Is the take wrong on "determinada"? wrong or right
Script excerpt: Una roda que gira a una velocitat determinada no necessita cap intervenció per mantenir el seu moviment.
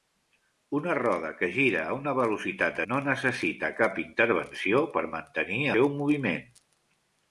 wrong